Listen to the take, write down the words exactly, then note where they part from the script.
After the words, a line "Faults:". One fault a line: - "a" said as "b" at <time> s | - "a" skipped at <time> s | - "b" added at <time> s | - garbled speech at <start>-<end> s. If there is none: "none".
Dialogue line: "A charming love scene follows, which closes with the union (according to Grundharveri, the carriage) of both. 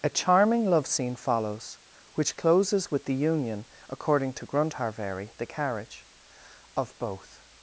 "A charming love scene follows, which closes with the union (according to Grundharveri, the carriage) of both.
Faults:
none